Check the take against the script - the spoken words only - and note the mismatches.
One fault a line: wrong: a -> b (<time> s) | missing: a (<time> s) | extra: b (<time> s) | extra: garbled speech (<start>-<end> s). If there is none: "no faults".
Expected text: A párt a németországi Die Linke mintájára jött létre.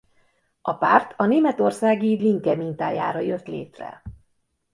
missing: Die (2.2 s)